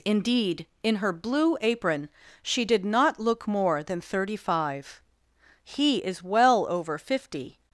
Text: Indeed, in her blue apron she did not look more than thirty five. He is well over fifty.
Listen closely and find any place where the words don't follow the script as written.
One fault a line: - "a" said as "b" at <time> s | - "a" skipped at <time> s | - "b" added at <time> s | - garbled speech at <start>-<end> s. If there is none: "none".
none